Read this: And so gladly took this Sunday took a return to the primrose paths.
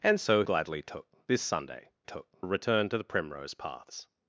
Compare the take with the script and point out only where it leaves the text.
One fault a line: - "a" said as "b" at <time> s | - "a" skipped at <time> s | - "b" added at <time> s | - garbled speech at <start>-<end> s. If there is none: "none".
none